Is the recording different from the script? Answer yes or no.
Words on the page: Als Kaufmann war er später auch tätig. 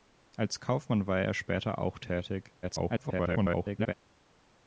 yes